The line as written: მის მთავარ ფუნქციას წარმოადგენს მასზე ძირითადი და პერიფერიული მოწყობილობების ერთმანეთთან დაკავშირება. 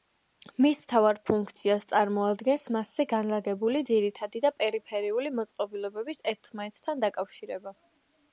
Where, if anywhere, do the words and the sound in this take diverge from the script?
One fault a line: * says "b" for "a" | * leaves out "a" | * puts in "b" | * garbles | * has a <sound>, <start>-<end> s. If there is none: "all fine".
* puts in "განლაგებული"